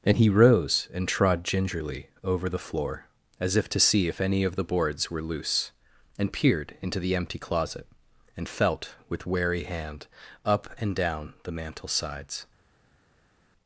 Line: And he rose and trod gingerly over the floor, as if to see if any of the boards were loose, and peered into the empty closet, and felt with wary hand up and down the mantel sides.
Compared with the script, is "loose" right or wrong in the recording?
right